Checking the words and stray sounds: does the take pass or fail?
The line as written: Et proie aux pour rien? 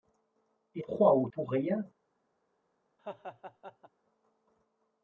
fail